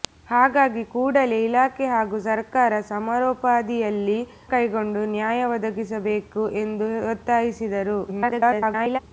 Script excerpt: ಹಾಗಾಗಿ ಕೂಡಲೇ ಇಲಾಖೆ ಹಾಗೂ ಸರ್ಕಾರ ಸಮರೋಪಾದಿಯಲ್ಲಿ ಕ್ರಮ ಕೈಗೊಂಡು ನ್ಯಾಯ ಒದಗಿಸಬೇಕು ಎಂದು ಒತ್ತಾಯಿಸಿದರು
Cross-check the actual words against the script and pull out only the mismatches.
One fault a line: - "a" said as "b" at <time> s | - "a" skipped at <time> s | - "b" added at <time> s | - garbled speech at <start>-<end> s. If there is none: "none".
- "ಕ್ರಮ" skipped at 4.2 s
- garbled speech at 8.1-9.0 s